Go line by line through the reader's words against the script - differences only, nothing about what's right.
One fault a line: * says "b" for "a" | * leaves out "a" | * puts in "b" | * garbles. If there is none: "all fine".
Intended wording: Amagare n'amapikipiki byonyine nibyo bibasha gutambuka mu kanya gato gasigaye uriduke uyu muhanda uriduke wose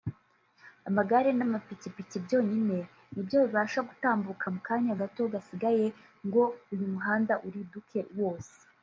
* says "ngo" for "uriduke"